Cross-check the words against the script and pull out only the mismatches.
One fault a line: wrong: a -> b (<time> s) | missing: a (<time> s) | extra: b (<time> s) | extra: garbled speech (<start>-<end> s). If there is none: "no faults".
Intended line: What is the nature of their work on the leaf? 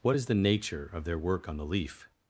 no faults